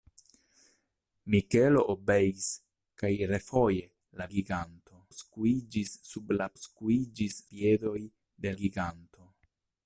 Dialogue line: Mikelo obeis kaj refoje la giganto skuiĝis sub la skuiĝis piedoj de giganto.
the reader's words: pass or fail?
pass